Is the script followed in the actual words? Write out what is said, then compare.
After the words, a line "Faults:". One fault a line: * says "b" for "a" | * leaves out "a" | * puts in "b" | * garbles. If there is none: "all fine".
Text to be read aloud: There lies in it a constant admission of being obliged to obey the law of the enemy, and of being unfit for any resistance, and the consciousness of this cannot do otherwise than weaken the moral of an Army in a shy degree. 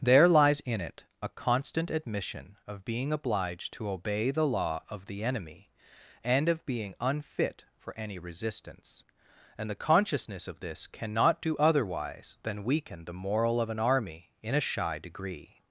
There lies in it a constant admission of being obliged to obey the law of the enemy, and of being unfit for any resistance, and the consciousness of this cannot do otherwise than weaken the moral of an Army in a shy degree.
Faults:
all fine